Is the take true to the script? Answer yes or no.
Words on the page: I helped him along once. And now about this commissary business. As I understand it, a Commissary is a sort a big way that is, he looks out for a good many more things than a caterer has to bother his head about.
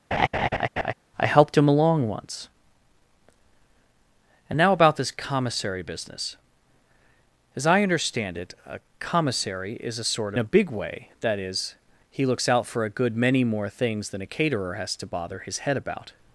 yes